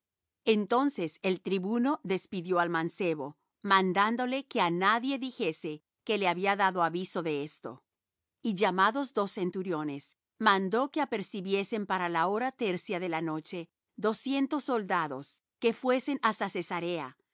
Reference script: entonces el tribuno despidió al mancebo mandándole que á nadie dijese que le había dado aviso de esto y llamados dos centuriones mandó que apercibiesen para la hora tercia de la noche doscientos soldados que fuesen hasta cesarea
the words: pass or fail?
pass